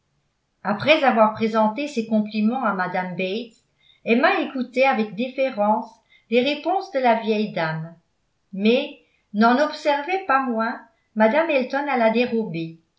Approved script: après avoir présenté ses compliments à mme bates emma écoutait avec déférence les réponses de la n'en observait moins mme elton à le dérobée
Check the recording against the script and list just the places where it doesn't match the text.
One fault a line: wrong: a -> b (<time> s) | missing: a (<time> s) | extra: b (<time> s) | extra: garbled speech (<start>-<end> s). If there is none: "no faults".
extra: vieille dame mais (7.2 s)
extra: pas (10.3 s)
wrong: le -> la (12.0 s)